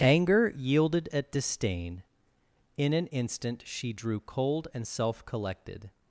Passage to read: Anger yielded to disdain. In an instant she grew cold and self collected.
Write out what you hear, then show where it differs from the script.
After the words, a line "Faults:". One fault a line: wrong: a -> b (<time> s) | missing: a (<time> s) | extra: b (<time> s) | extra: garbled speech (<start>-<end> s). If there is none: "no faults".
Anger yielded at disdain. In an instant she drew cold and self collected.
Faults:
wrong: to -> at (1.1 s)
wrong: grew -> drew (3.9 s)